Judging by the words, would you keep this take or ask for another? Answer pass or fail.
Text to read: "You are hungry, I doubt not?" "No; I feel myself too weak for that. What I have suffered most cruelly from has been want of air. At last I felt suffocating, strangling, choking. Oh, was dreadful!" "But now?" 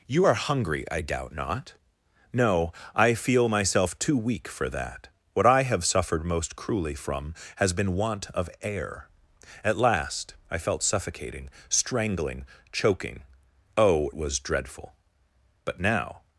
pass